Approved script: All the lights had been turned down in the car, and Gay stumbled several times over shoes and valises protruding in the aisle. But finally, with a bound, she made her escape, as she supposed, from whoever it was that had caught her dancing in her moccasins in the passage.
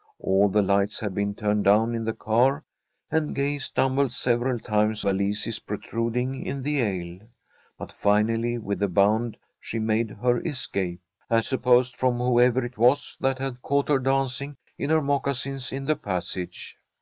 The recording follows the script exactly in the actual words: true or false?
false